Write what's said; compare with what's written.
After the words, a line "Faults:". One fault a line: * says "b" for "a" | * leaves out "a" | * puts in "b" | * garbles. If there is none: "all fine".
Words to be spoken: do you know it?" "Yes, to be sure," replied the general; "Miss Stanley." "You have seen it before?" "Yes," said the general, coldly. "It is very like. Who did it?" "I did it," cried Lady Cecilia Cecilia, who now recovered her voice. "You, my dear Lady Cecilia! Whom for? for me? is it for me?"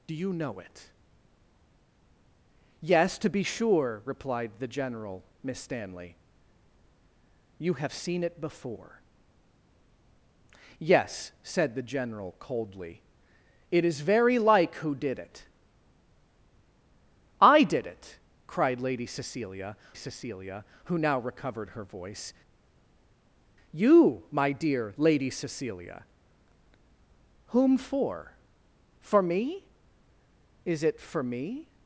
do you know it?" "Yes, to be sure," replied the general; "Miss Stanley." "You have seen it before?" "Yes," said the general, coldly. "It is very like. Who did it?" "I did it," cried Lady Cecilia Cecilia, who now recovered her voice. "You, my dear Lady Cecilia! Whom for? for me? is it for me?"
Faults:
all fine